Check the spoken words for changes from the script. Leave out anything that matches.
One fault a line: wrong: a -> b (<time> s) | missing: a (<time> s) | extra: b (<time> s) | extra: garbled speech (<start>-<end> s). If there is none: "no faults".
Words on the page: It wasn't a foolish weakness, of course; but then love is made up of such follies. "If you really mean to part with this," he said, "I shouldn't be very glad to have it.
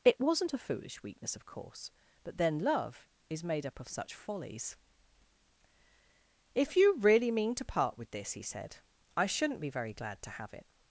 no faults